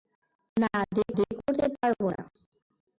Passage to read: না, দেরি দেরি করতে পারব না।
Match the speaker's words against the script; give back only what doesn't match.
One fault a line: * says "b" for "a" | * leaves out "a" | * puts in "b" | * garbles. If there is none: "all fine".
all fine